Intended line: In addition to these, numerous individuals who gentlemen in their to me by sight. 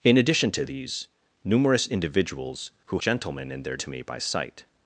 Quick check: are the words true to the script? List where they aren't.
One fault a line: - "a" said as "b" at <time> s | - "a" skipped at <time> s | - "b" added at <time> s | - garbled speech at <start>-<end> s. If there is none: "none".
none